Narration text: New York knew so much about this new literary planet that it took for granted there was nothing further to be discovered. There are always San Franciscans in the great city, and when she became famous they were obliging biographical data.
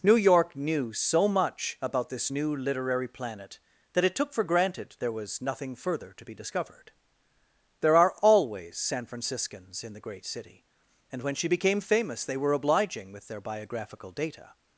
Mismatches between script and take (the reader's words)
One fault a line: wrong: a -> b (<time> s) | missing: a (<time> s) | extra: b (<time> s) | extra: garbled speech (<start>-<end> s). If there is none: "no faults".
extra: with their (13.1 s)